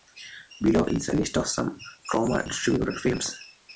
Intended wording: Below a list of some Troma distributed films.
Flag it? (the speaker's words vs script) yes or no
yes